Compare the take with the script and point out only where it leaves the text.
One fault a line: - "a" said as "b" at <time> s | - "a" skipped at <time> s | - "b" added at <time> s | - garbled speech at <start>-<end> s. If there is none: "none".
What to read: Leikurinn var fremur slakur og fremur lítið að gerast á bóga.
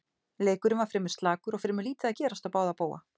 - "báða" added at 2.6 s